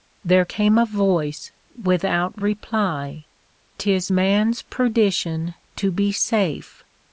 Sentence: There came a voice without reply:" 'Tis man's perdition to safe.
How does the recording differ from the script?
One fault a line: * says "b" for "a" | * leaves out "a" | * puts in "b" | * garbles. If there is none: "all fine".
* puts in "be"